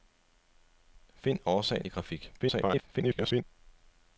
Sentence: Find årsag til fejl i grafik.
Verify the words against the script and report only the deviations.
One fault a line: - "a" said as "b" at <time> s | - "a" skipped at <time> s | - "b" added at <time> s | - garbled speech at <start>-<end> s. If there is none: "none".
- "til fejl" skipped at 1.9 s
- garbled speech at 2.4-3.4 s